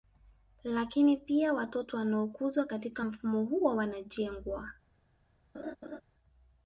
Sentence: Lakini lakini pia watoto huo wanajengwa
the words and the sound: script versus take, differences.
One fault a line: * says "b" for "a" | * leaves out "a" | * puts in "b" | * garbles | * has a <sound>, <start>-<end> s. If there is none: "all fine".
* leaves out "lakini"
* puts in "wanaokuzwa katika mfumo"
* has a laugh, 5.5-6.0 s